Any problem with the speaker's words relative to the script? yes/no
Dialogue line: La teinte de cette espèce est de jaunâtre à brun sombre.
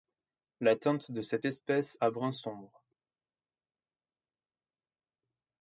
yes